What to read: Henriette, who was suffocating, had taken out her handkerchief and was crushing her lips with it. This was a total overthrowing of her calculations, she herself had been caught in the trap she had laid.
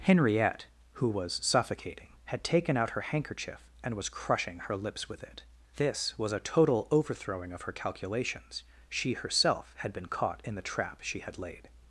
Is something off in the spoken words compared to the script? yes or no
no